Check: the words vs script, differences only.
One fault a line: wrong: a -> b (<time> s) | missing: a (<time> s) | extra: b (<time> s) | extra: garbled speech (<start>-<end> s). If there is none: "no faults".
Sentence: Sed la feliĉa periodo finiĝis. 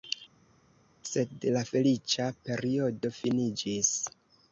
no faults